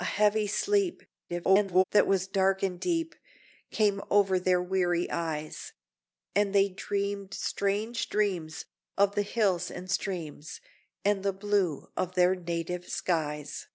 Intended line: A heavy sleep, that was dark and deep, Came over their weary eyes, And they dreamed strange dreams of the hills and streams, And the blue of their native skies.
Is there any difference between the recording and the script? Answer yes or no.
yes